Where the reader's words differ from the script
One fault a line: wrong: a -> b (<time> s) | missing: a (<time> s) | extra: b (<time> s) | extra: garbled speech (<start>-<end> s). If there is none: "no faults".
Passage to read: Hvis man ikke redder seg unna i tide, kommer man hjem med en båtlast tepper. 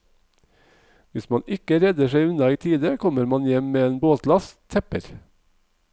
no faults